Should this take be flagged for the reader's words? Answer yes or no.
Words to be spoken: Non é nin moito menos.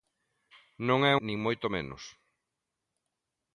no